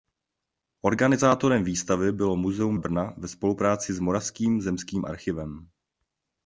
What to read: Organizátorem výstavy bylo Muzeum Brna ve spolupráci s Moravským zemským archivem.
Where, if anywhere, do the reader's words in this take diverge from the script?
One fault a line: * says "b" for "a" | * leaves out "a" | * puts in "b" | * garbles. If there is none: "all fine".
all fine